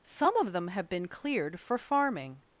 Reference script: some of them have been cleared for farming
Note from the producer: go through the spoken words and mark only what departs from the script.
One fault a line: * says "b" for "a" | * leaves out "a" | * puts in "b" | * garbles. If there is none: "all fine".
all fine